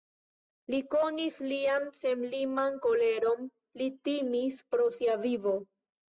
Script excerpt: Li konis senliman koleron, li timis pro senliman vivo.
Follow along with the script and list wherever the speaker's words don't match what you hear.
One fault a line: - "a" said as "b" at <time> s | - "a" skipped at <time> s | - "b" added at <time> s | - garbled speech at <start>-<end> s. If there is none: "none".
- "lian" added at 1.5 s
- "senliman" said as "sia" at 5.0 s